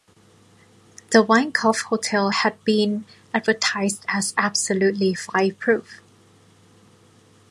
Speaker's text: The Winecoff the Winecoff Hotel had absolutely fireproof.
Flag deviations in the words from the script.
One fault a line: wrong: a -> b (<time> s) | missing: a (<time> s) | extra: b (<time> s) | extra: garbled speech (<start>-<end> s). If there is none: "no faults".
wrong: the Winecoff Hotel had -> Hotel had been advertised as (1.8 s)